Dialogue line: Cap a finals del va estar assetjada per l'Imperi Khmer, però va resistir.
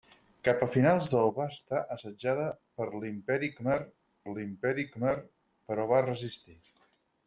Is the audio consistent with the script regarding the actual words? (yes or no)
no